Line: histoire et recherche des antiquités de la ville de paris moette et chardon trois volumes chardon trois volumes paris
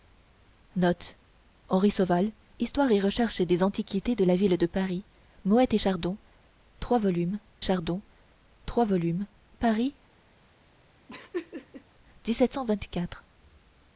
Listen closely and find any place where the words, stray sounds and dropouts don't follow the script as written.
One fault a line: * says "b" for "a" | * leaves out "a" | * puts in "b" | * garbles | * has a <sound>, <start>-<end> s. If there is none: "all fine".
* has a laugh, 11.1-11.8 s